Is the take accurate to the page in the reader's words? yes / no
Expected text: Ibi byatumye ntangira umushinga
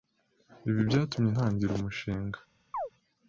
yes